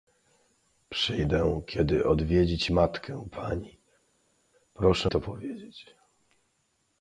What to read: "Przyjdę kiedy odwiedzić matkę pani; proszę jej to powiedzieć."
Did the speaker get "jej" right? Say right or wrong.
wrong